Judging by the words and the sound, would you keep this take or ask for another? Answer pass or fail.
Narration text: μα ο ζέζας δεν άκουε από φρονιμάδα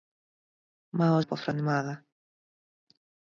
fail